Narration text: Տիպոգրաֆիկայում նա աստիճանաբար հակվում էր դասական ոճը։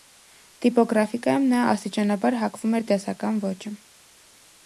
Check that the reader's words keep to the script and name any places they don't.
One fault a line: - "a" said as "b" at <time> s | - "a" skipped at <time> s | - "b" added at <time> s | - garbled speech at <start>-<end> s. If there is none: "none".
none